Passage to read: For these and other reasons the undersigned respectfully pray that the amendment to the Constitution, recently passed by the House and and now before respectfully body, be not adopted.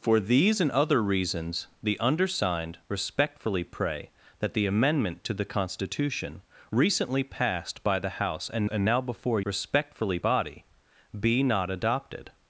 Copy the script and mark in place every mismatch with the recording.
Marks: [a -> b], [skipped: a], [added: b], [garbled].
For these and other reasons the undersigned respectfully pray that the amendment to the Constitution, recently passed by the House and and now before respectfully body, be not adopted.